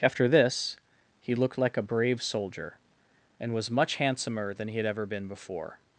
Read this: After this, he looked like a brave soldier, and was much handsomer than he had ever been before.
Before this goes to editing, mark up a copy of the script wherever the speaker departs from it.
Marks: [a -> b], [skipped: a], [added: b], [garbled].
After this, he looked like a brave soldier, and was much handsomer than he had ever been before.